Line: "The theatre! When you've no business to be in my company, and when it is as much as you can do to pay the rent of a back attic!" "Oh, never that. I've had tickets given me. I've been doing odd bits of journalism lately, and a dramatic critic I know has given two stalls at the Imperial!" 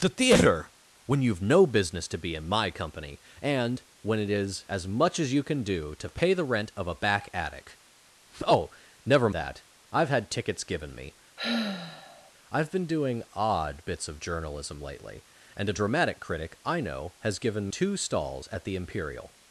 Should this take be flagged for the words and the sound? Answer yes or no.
yes